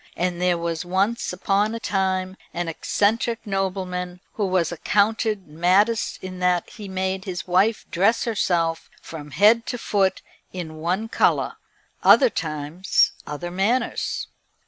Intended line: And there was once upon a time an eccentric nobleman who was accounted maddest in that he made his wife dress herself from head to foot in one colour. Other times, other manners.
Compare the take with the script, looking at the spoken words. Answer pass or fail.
pass